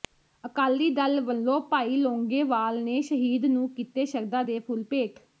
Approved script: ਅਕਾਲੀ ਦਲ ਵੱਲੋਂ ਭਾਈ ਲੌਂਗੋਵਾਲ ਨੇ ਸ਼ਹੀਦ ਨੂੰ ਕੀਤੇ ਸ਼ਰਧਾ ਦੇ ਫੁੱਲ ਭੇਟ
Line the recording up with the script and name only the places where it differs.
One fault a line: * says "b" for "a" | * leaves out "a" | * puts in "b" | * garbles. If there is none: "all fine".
all fine